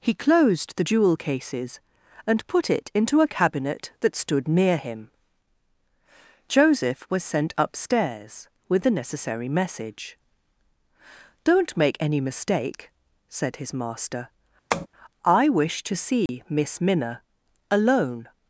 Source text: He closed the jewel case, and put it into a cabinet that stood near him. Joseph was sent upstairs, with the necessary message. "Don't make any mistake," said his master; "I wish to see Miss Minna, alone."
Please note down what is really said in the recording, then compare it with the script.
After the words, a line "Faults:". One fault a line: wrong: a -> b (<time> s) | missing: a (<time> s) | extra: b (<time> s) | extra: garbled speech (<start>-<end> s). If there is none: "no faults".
He closed the jewel cases, and put it into a cabinet that stood near him. Joseph was sent upstairs, with the necessary message. "Don't make any mistake," said his master; "I wish to see Miss Minna, alone."
Faults:
wrong: case -> cases (1.2 s)